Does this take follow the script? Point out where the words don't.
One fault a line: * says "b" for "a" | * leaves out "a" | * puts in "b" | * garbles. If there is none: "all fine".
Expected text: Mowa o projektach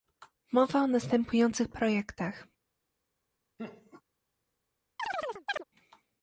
* puts in "następujących"